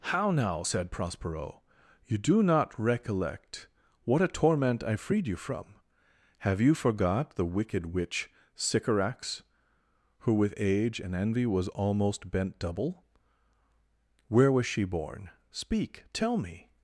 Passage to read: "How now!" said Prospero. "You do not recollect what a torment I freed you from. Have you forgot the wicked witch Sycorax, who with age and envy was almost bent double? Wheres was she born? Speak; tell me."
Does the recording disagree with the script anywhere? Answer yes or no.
yes